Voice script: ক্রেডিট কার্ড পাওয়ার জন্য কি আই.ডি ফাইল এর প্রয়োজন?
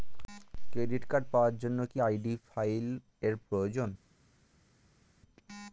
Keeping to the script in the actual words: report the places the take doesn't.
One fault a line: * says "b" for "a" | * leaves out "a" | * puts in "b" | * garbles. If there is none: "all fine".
all fine